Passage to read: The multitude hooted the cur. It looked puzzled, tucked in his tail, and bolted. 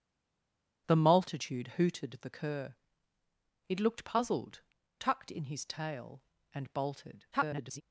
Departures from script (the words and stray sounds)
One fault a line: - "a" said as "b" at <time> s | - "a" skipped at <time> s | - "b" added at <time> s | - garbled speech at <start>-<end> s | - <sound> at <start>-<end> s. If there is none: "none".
- garbled speech at 7.3-7.8 s